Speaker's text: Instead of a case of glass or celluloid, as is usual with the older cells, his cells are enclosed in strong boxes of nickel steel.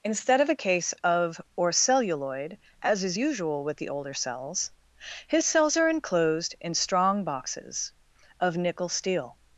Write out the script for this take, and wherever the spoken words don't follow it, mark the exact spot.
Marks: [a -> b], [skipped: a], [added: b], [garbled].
Instead of a case of [skipped: glass] or celluloid, as is usual with the older cells, his cells are enclosed in strong boxes of nickel steel.